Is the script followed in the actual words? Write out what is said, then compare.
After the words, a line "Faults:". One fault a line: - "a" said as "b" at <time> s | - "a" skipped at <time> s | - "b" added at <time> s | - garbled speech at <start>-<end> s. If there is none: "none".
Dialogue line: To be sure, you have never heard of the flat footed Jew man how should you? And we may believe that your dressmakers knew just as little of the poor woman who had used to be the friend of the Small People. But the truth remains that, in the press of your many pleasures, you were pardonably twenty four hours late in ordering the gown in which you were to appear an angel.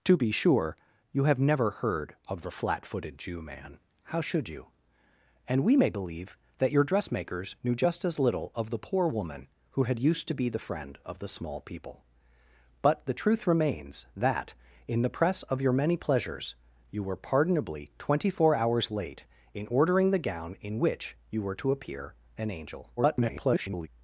To be sure, you have never heard of the flat footed Jew man how should you? And we may believe that your dressmakers knew just as little of the poor woman who had used to be the friend of the Small People. But the truth remains that, in the press of your many pleasures, you were pardonably twenty four hours late in ordering the gown in which you were to appear an angel. [garbled]
Faults:
- garbled speech at 23.0-23.9 s